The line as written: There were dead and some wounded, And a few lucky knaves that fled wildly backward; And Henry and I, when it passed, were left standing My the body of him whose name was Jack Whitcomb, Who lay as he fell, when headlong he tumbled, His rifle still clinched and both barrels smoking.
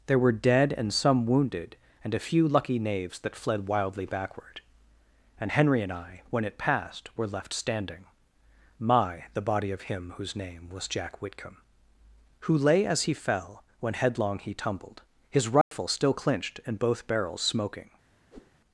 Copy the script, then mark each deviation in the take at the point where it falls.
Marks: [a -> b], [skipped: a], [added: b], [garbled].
There were dead and some wounded, And a few lucky knaves that fled wildly backward; And Henry and I, when it passed, were left standing My the body of him whose name was Jack Whitcomb, Who lay as he fell, when headlong he tumbled, His rifle still clinched and both barrels smoking.